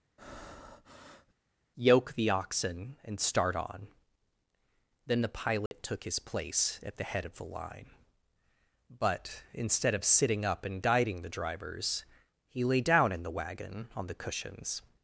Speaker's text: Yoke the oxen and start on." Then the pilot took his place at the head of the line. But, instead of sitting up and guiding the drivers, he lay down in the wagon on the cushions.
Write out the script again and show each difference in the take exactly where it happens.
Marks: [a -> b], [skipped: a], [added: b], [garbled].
Yoke the oxen and start on." Then the pilot took his place at the head of the line. But, instead of sitting up and guiding the drivers, he lay down in the wagon on the cushions.